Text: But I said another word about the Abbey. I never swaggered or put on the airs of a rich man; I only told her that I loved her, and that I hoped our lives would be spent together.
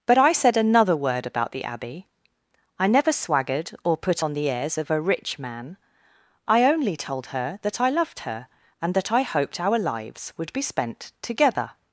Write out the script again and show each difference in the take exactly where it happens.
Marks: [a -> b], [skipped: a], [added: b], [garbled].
But I said another word about the Abbey. I never swaggered or put on the airs of a rich man; I only told her that I loved her, and that I hoped our lives would be spent together.